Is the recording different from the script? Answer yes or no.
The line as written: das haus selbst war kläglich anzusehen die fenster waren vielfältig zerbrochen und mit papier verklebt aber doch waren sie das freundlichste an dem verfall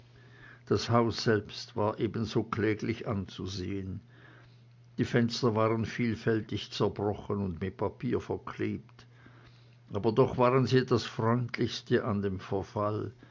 yes